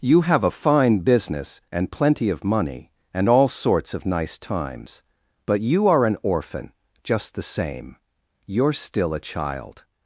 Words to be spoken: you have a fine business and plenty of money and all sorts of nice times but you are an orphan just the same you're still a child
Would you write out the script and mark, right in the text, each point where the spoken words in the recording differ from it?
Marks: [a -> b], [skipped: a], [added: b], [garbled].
you have a fine business and plenty of money and all sorts of nice times but you are an orphan just the same you're still a child